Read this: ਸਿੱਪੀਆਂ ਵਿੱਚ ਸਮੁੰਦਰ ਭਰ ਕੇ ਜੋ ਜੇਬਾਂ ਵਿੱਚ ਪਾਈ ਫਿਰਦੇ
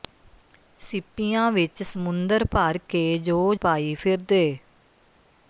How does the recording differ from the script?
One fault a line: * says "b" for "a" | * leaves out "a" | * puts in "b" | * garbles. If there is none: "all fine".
* leaves out "ਜੇਬਾਂ ਵਿੱਚ"